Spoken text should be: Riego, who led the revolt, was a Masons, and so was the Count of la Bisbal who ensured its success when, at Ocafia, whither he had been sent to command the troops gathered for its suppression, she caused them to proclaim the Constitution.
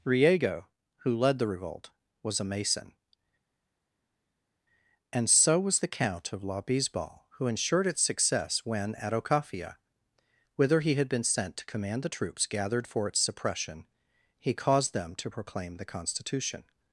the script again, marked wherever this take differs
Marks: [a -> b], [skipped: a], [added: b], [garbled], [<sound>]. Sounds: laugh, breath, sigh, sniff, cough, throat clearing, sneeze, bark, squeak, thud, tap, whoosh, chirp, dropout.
Riego, who led the revolt, was a [Masons, -> Mason] and so was the Count of la Bisbal who ensured its success when, at Ocafia, whither he had been sent to command the troops gathered for its suppression, [she -> he] caused them to proclaim the Constitution.